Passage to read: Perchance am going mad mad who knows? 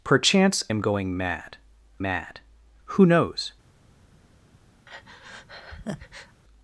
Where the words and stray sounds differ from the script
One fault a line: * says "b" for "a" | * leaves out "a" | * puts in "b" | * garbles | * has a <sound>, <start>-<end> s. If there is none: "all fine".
* has a breath, 4.9-6.4 s